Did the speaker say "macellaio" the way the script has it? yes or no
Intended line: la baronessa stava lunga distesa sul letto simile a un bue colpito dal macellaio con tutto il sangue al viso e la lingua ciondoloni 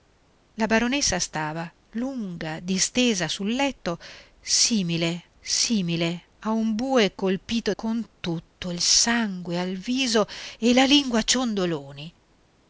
no